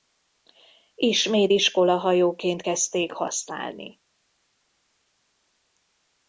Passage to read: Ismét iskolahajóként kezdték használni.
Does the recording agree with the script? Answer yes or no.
yes